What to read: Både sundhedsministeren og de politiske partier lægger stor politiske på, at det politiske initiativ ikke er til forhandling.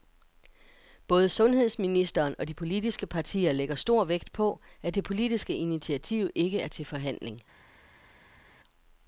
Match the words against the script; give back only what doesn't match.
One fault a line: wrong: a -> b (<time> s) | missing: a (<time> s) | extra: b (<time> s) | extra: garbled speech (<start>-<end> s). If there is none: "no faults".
wrong: politiske -> vægt (4.0 s)